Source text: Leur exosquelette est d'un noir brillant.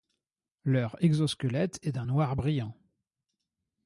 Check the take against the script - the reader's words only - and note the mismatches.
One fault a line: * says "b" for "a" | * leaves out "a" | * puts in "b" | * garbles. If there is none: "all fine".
all fine